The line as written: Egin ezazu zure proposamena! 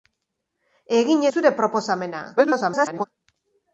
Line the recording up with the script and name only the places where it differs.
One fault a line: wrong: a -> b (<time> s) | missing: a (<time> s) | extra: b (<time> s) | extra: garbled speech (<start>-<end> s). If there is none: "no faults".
missing: ezazu (1.2 s)
extra: garbled speech (2.4-3.0 s)